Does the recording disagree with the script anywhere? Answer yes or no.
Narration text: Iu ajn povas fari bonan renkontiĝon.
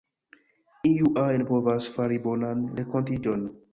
no